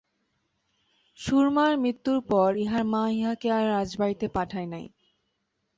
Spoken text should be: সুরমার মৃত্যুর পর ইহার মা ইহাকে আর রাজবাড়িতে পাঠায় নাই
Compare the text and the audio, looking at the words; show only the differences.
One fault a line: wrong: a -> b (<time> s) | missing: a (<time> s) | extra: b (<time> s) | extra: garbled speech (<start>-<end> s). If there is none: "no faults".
no faults